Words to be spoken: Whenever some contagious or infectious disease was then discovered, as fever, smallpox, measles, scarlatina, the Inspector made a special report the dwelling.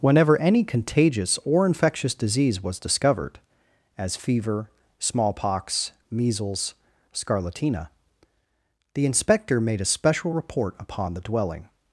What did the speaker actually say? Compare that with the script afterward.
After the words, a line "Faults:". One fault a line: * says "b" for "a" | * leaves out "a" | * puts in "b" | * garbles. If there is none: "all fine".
Whenever any contagious or infectious disease was discovered, as fever, smallpox, measles, scarlatina, the Inspector made a special report upon the dwelling.
Faults:
* says "any" for "some"
* leaves out "then"
* puts in "upon"